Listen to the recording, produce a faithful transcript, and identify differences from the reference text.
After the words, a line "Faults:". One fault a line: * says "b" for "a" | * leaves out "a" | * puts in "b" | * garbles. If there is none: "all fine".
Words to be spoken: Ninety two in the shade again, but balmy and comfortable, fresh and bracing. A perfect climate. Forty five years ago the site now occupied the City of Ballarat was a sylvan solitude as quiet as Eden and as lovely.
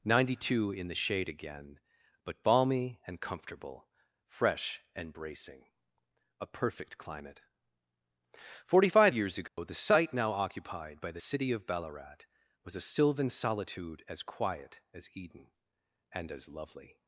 Ninety two in the shade again, but balmy and comfortable, fresh and bracing. A perfect climate. Forty five years ago the site now occupied by the City of Ballarat was a sylvan solitude as quiet as Eden and as lovely.
Faults:
* puts in "by"